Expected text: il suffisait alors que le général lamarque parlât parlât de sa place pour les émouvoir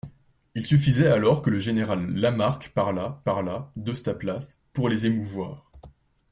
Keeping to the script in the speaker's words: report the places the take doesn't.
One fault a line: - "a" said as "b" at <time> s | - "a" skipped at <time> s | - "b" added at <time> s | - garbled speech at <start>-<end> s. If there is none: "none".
none